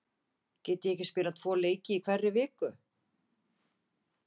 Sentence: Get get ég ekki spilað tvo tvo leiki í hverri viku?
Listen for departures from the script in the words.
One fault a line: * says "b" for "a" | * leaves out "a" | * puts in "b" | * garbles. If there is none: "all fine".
* leaves out "get"
* leaves out "tvo"